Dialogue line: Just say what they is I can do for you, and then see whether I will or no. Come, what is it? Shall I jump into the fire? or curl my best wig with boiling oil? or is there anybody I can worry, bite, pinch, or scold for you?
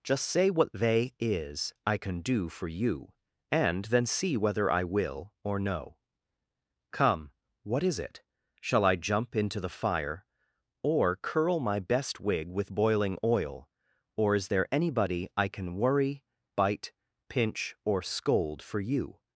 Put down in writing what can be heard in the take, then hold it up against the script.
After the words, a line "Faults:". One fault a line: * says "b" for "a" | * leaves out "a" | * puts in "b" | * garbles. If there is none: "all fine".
Just say what they is I can do for you, and then see whether I will or no. Come, what is it? Shall I jump into the fire? or curl my best wig with boiling oil? or is there anybody I can worry, bite, pinch, or scold for you?
Faults:
all fine